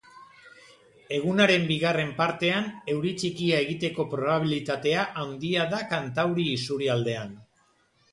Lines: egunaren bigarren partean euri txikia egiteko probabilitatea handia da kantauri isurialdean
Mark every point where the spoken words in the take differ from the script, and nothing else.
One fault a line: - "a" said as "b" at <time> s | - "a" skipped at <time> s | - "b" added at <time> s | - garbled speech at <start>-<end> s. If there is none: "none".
none